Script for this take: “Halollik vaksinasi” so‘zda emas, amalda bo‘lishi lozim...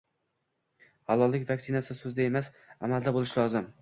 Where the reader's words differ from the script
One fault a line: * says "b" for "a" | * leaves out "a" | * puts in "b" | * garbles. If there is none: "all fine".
all fine